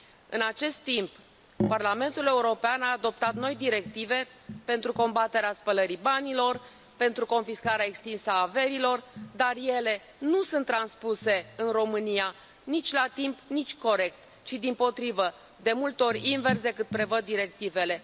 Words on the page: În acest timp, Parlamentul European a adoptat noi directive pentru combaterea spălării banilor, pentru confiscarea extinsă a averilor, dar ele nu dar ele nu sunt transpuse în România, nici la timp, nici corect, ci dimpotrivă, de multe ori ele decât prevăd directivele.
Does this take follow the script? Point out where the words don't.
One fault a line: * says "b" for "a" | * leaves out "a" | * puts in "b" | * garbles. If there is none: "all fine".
* leaves out "dar ele nu"
* says "invers" for "ele"